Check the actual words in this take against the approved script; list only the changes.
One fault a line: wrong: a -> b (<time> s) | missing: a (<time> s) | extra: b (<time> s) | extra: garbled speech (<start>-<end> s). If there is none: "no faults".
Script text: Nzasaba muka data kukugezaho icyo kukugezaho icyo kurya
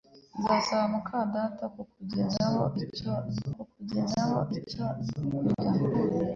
no faults